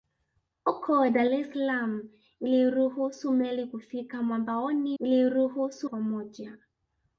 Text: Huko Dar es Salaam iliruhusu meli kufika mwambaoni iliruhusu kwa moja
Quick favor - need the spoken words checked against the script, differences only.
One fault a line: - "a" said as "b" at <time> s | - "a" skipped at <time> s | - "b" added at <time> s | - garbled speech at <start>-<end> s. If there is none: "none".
none